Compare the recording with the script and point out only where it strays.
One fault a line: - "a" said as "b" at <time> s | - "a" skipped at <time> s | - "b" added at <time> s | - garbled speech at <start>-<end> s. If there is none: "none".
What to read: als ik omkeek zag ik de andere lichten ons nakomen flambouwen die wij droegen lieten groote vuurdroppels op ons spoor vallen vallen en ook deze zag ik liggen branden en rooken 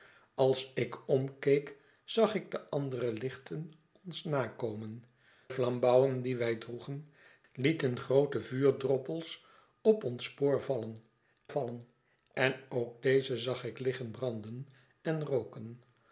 none